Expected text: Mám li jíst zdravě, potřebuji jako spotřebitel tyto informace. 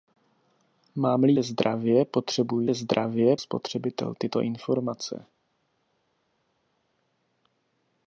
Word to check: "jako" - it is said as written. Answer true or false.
false